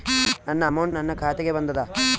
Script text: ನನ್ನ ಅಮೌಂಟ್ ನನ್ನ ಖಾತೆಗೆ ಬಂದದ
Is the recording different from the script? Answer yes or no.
no